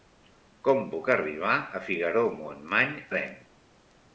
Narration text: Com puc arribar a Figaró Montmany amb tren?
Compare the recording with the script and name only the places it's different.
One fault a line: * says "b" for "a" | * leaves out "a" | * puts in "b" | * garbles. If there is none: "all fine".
* leaves out "amb"